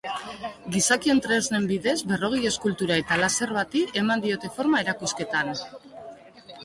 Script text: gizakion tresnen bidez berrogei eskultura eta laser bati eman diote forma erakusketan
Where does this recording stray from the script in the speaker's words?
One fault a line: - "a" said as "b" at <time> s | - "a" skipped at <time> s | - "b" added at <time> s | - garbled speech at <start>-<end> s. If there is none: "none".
none